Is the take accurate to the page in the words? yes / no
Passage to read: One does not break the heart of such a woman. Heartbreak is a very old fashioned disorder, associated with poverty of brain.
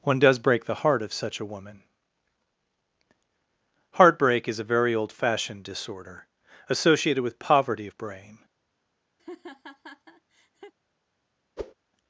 no